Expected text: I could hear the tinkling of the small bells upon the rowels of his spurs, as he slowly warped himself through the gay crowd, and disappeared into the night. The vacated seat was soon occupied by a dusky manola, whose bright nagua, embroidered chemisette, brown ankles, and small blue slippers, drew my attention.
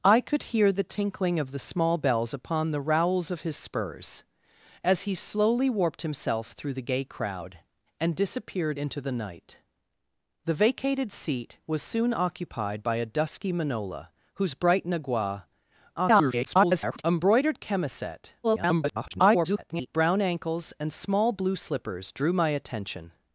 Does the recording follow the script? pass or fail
fail